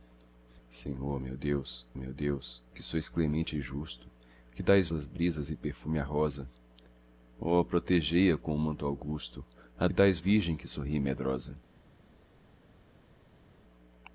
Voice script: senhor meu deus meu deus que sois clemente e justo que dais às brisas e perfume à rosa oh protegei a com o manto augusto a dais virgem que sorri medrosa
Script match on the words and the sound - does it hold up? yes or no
yes